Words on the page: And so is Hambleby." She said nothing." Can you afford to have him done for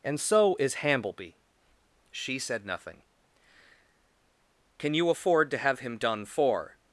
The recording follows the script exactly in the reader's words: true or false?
true